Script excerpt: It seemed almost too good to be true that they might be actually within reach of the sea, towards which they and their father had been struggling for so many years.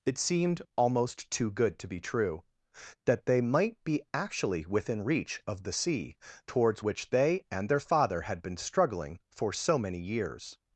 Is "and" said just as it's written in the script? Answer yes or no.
yes